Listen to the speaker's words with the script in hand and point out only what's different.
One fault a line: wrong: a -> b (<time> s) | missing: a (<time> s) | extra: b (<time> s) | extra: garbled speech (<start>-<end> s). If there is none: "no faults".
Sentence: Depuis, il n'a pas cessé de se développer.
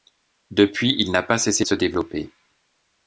no faults